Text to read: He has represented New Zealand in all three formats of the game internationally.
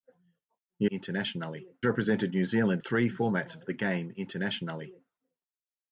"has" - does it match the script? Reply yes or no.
no